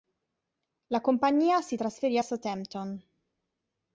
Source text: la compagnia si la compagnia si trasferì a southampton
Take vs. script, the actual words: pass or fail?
fail